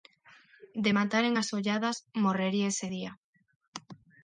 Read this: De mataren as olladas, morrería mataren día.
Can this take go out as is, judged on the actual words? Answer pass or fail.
fail